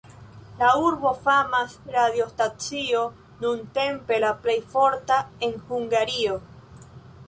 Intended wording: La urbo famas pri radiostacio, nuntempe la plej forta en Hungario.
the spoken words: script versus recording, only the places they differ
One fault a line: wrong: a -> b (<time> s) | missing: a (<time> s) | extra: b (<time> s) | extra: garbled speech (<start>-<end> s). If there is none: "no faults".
missing: pri (1.8 s)